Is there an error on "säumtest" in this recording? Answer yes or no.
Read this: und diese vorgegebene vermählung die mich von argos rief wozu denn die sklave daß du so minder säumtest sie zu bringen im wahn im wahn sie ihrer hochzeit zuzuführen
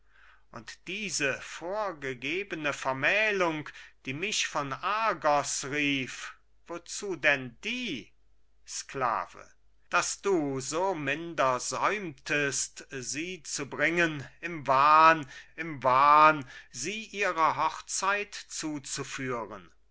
no